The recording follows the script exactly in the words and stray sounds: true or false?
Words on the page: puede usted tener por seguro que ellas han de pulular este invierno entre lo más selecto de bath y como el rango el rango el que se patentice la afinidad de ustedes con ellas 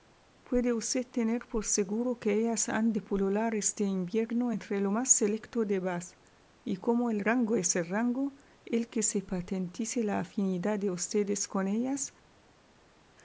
false